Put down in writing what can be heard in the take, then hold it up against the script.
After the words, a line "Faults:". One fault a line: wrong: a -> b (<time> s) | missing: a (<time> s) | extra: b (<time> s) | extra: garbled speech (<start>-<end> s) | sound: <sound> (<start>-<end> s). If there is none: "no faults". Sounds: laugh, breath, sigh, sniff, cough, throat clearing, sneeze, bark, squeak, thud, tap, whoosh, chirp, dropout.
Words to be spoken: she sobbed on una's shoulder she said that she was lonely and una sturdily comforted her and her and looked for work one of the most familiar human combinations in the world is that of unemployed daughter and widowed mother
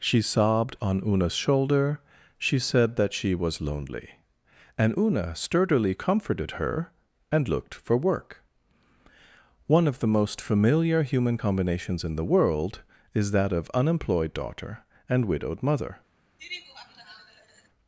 she sobbed on una's shoulder she said that she was lonely and una sturdily comforted her and looked for work one of the most familiar human combinations in the world is that of unemployed daughter and widowed mother
Faults:
missing: her and (7.5 s)
sound: laugh (16.4-17.7 s)